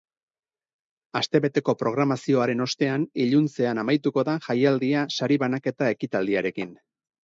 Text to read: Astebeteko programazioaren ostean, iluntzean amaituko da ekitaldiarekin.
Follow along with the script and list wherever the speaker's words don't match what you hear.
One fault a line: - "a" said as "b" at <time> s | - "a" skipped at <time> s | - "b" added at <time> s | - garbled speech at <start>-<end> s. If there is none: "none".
- "jaialdia sari banaketa" added at 4.5 s